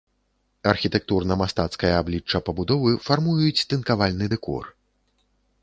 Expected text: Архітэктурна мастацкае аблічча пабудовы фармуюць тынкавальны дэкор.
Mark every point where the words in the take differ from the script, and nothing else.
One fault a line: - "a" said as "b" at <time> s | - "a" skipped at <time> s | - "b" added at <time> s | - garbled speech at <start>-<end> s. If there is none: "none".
none